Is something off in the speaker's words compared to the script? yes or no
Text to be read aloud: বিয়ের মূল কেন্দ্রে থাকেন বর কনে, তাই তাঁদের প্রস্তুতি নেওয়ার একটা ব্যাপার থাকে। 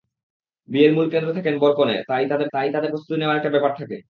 yes